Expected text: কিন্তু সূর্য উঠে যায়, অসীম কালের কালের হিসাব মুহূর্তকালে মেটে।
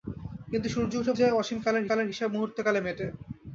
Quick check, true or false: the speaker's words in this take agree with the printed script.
true